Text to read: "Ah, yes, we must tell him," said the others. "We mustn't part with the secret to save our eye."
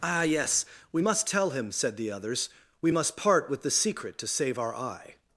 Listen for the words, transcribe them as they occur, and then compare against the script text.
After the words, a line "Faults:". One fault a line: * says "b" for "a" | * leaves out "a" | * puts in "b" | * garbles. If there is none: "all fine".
"Ah, yes, we must tell him," said the others. "We must part with the secret to save our eye."
Faults:
* says "must" for "mustn't"